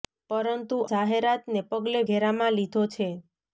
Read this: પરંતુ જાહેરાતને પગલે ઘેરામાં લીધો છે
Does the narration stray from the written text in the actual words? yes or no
no